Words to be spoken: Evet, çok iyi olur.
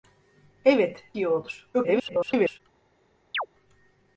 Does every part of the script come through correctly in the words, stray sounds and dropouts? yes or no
no